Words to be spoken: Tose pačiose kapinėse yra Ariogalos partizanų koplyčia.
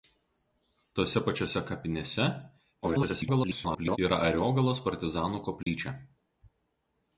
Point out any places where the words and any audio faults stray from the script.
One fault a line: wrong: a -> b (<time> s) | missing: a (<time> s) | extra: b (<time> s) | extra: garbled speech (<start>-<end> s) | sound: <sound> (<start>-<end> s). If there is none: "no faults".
extra: garbled speech (2.8-4.0 s)
sound: dropout (5.6-5.7 s)